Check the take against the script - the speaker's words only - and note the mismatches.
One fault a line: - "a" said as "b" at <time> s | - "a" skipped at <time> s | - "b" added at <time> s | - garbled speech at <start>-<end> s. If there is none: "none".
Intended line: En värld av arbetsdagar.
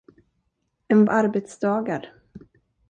- "värld av" skipped at 1.1 s